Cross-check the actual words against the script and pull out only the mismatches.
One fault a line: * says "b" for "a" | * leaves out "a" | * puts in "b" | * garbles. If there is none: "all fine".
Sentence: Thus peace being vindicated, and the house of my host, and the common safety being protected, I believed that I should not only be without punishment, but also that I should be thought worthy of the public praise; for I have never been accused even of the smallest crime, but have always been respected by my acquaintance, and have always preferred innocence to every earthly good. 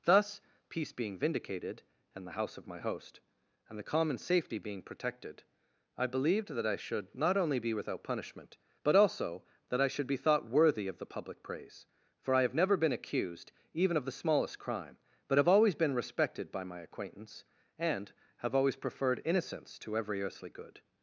all fine